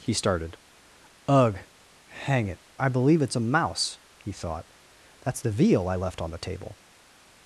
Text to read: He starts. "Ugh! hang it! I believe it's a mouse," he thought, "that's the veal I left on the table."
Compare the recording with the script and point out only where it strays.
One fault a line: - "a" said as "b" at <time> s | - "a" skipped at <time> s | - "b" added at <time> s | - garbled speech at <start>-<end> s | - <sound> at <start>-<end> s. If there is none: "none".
- "starts" said as "started" at 0.1 s